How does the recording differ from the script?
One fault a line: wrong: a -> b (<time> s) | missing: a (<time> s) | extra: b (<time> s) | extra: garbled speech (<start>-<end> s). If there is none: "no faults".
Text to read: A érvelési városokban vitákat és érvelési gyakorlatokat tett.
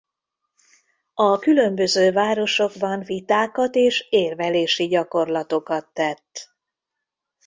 wrong: érvelési -> különböző (1.4 s)